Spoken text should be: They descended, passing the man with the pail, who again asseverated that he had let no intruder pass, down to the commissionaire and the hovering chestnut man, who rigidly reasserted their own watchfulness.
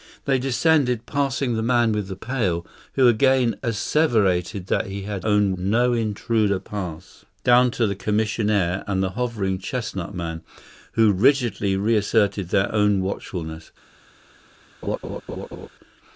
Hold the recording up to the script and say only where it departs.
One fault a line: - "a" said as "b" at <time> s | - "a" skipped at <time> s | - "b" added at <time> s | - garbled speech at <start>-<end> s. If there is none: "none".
- "let" said as "own" at 5.2 s